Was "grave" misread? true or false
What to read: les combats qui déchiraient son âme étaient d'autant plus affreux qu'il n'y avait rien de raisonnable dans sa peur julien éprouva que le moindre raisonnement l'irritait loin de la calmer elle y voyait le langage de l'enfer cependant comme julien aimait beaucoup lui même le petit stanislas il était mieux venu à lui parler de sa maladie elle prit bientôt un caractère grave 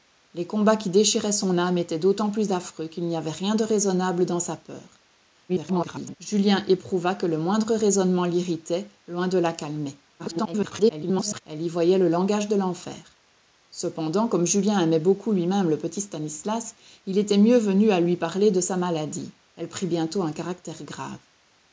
false